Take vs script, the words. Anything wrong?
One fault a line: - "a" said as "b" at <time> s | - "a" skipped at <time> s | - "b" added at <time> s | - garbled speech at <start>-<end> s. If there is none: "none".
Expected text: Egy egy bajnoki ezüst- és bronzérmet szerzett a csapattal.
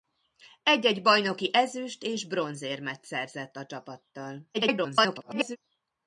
- garbled speech at 4.5-5.6 s